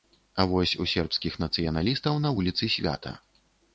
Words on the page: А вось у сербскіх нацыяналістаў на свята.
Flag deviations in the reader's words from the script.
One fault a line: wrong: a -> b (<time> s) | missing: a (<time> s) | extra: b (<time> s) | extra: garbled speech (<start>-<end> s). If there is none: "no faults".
extra: вуліцы (2.4 s)